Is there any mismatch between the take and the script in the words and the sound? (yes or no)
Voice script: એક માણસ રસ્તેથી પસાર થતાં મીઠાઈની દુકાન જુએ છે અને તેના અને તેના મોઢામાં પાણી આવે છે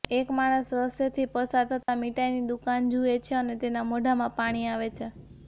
yes